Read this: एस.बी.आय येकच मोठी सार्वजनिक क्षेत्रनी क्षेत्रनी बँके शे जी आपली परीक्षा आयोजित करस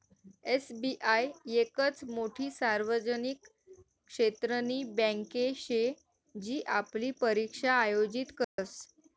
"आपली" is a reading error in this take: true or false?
false